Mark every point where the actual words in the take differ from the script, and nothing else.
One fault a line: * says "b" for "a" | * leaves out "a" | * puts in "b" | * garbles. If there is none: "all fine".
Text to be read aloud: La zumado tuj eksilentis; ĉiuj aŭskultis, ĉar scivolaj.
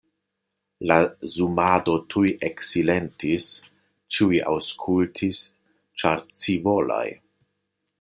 all fine